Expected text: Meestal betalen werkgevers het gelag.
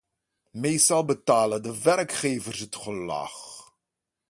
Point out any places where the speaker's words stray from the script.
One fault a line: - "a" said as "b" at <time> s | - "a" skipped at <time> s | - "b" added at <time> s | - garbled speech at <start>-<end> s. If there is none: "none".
- "de" added at 1.6 s